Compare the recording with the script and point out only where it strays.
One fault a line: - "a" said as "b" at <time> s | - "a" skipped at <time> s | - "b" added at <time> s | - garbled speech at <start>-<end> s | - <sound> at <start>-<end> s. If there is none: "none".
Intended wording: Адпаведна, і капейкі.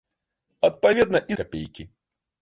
none